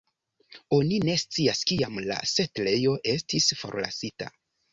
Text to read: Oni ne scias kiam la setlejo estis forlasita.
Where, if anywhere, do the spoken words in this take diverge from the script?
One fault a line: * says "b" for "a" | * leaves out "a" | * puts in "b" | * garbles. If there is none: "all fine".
all fine